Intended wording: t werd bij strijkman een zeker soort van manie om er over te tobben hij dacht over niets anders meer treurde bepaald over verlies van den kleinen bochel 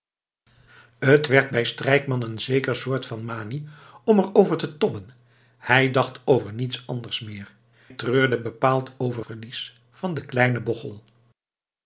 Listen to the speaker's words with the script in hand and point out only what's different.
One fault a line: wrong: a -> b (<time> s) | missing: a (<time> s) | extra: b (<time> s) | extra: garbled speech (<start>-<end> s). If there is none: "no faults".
no faults